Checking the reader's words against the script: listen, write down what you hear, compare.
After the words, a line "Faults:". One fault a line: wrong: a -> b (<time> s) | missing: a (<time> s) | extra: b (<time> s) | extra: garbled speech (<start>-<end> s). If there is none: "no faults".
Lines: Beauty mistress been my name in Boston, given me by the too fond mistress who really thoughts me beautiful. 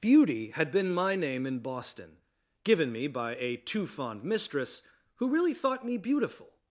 Beauty had been my name in Boston, given me by a too fond mistress who really thought me beautiful.
Faults:
wrong: mistress -> had (0.5 s)
wrong: the -> a (3.4 s)
wrong: thoughts -> thought (5.5 s)